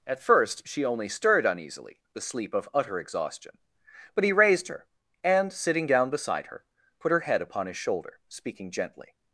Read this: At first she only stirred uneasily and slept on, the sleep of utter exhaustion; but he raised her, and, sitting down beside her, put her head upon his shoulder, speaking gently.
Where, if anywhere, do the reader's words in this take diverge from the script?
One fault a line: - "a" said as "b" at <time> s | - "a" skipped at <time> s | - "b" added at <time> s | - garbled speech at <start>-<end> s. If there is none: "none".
- "and slept on" skipped at 2.0 s